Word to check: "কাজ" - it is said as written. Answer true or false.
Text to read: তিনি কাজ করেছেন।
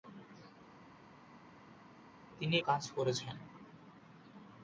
true